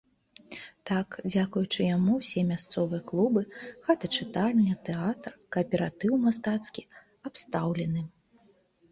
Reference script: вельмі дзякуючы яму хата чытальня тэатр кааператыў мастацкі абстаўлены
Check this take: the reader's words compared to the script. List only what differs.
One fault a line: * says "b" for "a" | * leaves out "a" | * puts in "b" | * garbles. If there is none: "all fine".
* says "так" for "вельмі"
* puts in "ўсе мясцовыя клубы"